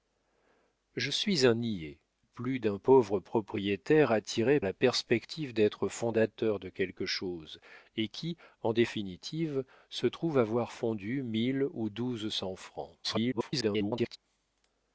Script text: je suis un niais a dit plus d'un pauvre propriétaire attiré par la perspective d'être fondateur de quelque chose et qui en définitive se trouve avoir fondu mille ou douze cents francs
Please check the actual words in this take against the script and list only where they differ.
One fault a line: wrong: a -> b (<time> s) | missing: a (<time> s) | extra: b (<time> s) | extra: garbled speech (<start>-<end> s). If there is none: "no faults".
missing: a dit (2.0 s)
missing: par (4.6 s)
extra: garbled speech (13.0-14.2 s)